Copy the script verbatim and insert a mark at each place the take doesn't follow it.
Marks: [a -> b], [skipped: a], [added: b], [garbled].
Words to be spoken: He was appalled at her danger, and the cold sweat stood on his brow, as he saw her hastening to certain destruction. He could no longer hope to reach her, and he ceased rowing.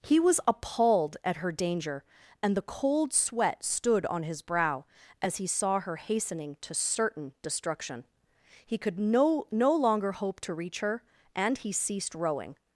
He was appalled at her danger, and the cold sweat stood on his brow, as he saw her hastening to certain destruction. He could no [added: no] longer hope to reach her, and he ceased rowing.